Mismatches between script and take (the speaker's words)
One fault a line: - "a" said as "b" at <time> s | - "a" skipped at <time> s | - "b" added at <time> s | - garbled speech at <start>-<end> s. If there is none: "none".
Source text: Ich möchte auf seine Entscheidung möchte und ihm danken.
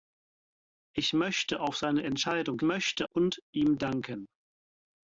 none